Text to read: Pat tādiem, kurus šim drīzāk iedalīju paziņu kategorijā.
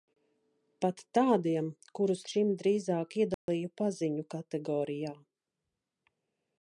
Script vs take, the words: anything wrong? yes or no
no